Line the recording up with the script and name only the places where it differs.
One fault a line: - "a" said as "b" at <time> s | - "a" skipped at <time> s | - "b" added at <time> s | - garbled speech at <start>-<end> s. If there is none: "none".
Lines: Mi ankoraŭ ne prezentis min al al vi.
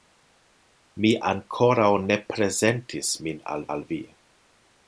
none